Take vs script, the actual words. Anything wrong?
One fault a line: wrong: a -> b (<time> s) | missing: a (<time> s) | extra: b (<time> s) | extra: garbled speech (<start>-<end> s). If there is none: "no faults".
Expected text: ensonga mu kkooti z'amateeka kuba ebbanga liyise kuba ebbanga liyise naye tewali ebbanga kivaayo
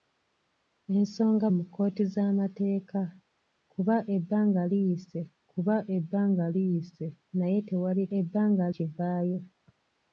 no faults